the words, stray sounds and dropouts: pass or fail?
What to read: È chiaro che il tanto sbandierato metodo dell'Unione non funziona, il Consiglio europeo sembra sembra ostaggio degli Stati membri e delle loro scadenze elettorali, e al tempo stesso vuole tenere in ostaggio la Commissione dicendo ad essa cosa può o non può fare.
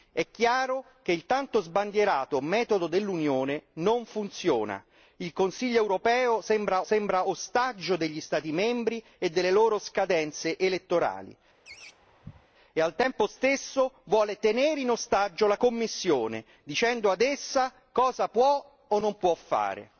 fail